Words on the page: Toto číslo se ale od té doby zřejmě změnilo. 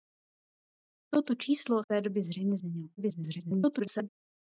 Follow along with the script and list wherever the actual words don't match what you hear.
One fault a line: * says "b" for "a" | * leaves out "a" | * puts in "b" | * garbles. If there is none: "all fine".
* leaves out "se ale od"
* garbles